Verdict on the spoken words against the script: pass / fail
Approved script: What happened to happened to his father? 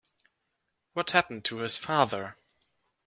fail